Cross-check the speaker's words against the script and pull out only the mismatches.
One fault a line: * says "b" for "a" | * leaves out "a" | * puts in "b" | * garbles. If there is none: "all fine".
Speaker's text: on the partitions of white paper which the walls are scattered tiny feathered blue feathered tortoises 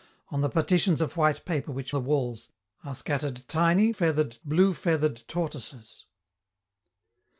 all fine